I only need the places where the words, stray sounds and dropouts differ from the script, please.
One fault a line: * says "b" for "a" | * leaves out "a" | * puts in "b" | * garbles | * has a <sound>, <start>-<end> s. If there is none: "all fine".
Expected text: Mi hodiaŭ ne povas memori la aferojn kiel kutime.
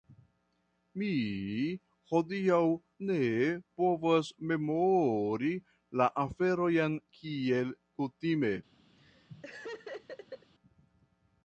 * has a laugh, 9.0-10.5 s